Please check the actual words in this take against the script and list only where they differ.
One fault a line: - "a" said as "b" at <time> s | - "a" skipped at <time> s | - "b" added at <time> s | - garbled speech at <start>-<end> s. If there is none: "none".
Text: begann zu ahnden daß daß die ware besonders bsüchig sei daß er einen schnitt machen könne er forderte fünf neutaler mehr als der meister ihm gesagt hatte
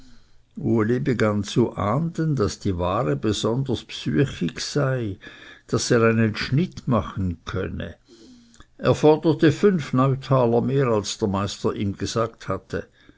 - "daß" skipped at 2.6 s